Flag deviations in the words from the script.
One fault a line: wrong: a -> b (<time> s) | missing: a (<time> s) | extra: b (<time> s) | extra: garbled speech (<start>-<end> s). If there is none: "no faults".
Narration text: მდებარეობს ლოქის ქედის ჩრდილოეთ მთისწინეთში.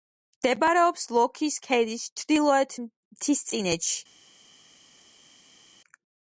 no faults